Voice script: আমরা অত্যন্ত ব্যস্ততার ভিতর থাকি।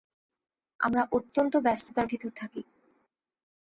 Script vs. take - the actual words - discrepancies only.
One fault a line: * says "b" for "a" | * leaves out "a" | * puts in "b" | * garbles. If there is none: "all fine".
all fine